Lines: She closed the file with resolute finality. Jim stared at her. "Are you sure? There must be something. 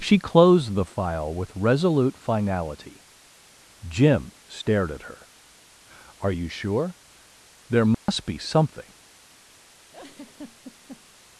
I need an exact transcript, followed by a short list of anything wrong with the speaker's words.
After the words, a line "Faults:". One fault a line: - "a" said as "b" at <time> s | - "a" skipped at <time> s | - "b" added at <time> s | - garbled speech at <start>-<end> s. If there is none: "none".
She closed the file with resolute finality. Jim stared at her. "Are you sure? There must be something.
Faults:
none